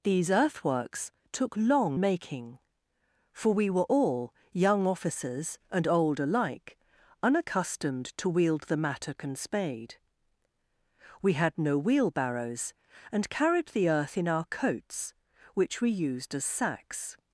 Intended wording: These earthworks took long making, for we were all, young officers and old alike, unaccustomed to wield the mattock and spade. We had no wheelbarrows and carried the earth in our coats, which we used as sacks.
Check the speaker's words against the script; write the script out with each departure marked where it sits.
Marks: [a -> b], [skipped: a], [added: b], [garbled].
These earthworks took long making, for we were all, young officers and old alike, unaccustomed to wield the mattock and spade. We had no wheelbarrows and carried the earth in our coats, which we used as sacks.